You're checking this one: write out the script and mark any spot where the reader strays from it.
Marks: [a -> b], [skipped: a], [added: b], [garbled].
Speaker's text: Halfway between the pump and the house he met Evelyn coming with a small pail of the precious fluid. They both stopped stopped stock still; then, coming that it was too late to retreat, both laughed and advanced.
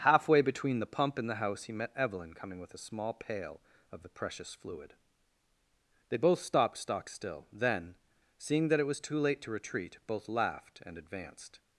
Halfway between the pump and the house he met Evelyn coming with a small pail of the precious fluid. They both stopped [skipped: stopped] stock still; then, [coming -> seeing] that it was too late to retreat, both laughed and advanced.